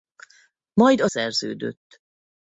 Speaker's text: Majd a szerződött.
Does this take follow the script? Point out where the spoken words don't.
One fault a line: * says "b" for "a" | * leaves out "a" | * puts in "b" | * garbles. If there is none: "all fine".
all fine